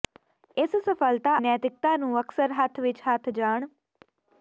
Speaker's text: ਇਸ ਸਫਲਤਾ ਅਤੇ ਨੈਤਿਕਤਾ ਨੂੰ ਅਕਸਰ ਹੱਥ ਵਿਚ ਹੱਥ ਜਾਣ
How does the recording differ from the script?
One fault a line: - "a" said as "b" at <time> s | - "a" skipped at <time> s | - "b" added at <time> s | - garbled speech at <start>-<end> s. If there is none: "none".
- "ਅਤੇ" skipped at 1.4 s